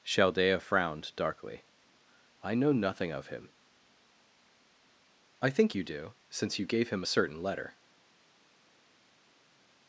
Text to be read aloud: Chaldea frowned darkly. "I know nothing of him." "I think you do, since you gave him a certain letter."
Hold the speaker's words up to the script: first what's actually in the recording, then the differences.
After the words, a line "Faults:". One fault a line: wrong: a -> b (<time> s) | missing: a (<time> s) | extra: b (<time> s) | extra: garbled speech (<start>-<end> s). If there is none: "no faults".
Chaldea frowned darkly. "I know nothing of him." "I think you do, since you gave him a certain letter."
Faults:
no faults